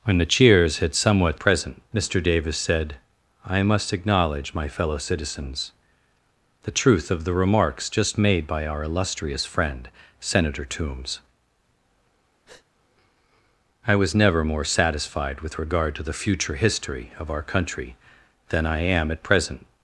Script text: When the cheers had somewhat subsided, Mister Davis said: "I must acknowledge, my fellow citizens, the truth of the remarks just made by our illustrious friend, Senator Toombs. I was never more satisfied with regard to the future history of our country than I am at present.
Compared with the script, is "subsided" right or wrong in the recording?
wrong